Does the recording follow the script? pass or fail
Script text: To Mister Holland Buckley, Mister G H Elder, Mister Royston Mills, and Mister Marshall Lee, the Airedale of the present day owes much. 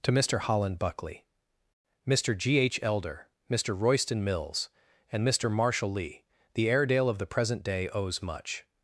pass